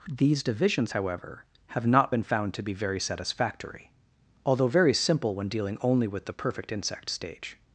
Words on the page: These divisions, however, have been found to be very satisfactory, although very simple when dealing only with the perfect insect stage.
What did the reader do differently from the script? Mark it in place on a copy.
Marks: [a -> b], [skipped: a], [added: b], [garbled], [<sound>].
These divisions, however, have [added: not] been found to be very satisfactory, although very simple when dealing only with the perfect insect stage.